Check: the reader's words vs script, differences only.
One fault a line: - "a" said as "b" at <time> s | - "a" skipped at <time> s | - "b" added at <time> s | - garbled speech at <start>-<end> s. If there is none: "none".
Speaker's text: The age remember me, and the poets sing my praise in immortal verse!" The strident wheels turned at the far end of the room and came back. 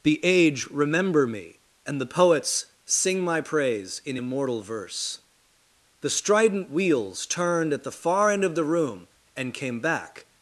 none